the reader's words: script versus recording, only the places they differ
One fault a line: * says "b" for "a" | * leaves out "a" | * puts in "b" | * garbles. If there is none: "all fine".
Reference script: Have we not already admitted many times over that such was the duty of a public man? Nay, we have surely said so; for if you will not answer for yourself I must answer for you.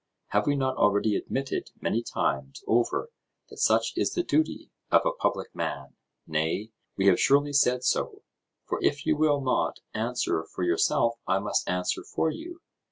* says "is" for "was"